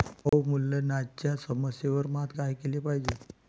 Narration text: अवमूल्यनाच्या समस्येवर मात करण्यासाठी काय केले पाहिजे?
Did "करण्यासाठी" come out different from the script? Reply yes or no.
yes